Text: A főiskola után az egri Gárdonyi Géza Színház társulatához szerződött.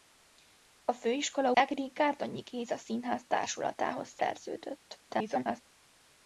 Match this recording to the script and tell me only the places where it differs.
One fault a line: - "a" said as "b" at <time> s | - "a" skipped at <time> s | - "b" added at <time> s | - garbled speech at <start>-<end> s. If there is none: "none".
- "után az" skipped at 1.5 s
- garbled speech at 5.1-5.6 s